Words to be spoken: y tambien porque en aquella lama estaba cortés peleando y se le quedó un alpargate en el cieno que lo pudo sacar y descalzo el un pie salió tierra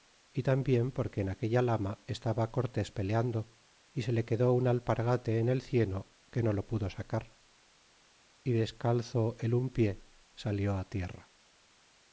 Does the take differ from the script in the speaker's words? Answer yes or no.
yes